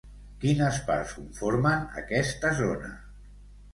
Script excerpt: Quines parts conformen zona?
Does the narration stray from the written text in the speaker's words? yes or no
yes